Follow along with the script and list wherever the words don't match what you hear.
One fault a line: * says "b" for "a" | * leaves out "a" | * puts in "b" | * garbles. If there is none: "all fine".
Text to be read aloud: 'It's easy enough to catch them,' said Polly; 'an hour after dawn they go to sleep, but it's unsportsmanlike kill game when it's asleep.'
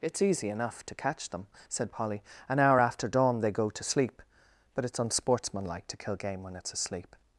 * puts in "to"